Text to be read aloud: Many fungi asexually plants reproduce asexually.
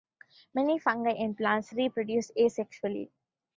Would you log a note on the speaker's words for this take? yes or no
yes